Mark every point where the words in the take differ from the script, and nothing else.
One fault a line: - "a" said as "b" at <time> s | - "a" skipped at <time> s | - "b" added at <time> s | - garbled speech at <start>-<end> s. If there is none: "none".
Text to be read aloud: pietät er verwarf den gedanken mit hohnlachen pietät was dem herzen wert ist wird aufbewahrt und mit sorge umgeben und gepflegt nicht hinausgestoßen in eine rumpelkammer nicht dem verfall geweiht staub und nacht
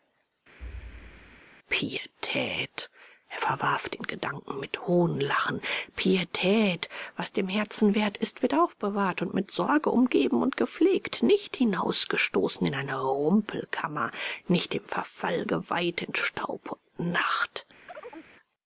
- "in" added at 16.0 s